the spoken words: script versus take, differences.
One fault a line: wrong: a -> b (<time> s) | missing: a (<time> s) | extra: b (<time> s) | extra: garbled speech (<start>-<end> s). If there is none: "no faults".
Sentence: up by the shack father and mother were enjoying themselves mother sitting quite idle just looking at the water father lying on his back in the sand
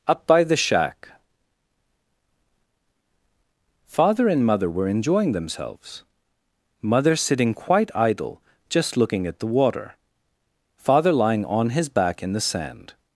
no faults